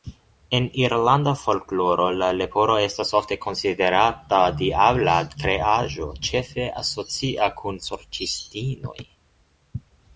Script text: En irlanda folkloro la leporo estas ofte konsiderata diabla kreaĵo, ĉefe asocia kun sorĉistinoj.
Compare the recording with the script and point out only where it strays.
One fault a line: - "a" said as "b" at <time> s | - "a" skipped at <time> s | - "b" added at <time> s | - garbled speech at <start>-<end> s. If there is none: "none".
none